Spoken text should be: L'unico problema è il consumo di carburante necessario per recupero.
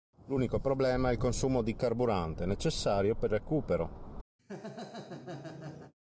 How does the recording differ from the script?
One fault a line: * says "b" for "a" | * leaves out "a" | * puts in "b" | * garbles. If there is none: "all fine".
all fine